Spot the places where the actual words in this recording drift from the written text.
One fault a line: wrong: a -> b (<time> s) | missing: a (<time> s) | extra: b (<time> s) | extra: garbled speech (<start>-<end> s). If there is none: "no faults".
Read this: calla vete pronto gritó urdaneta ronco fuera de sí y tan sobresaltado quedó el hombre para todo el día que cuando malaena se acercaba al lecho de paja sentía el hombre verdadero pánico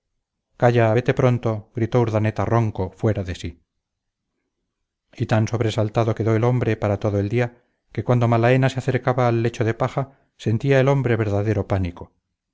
no faults